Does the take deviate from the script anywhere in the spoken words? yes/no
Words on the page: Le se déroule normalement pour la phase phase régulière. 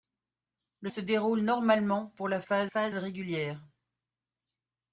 no